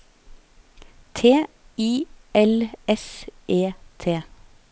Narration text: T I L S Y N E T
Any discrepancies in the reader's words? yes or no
yes